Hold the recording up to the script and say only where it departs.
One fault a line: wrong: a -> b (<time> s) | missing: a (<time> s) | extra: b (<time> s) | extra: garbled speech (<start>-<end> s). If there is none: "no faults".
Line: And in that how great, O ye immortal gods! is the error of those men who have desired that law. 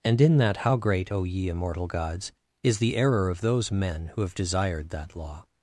no faults